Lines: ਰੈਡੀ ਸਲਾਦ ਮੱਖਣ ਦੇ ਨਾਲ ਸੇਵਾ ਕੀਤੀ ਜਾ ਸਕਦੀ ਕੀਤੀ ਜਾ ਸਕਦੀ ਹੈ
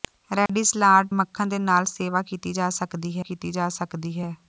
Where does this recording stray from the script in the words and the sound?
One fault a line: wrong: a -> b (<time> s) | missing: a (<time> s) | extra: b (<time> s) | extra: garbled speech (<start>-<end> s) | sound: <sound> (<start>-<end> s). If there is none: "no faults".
sound: dropout (0.5-0.5 s)